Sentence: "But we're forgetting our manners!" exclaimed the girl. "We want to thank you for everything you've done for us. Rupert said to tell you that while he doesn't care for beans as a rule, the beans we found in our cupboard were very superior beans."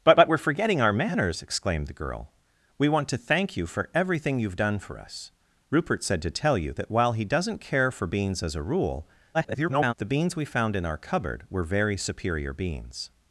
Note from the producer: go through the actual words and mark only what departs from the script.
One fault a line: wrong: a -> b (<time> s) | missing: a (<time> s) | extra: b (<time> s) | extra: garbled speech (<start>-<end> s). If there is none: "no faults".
extra: but (0.1 s)
extra: garbled speech (9.3-9.9 s)